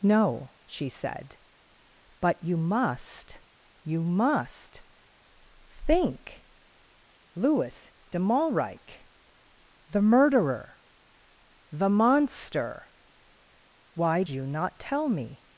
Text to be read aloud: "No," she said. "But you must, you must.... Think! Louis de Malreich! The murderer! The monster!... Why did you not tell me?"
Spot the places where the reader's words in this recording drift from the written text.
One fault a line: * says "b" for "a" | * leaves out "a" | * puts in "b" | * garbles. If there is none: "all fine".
* leaves out "did"